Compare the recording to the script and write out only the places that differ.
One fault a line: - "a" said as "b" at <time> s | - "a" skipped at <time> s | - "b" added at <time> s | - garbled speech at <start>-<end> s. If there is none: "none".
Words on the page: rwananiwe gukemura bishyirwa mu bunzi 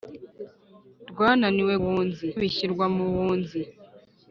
- "gukemura" said as "bunzi" at 1.8 s